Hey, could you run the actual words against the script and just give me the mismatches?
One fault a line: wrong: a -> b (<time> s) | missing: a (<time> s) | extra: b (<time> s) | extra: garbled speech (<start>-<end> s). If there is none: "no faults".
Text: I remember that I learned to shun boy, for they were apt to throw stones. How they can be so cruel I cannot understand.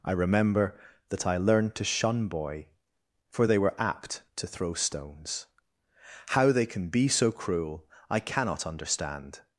no faults